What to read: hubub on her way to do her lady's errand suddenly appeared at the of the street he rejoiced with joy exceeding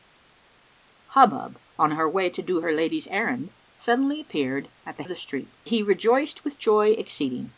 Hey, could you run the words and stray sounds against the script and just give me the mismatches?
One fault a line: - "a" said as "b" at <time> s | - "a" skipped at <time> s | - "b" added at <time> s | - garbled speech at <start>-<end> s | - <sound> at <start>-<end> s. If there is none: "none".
none